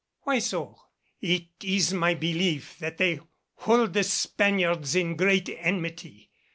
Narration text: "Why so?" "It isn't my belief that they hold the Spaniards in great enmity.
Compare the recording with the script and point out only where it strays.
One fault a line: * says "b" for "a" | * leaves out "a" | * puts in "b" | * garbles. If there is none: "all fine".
* says "is" for "isn't"